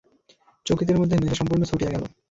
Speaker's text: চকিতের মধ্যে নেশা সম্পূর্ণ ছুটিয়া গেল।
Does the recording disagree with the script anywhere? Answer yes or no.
no